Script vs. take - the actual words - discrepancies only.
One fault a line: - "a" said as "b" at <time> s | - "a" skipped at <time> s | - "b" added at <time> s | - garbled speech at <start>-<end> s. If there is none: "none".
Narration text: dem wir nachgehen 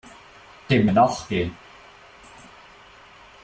none